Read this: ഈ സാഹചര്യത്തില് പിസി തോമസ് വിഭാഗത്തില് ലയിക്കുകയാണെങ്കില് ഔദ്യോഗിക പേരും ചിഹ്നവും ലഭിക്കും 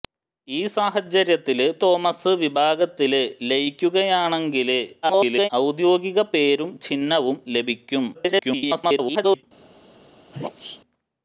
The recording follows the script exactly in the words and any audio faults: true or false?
false